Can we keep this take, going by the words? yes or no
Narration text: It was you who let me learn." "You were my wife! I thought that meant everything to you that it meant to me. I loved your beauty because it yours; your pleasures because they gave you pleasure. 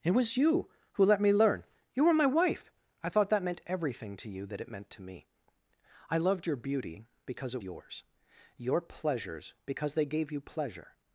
yes